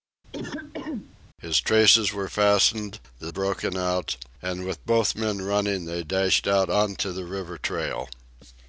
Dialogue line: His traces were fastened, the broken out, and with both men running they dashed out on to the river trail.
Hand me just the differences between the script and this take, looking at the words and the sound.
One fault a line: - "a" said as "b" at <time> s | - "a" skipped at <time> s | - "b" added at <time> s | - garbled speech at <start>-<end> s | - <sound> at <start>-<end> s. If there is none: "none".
- throat clearing at 0.3-1.2 s